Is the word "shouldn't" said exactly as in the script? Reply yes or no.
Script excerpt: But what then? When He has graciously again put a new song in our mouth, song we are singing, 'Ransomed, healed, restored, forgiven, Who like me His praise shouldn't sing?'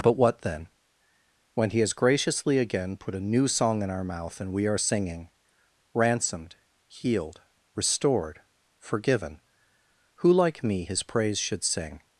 no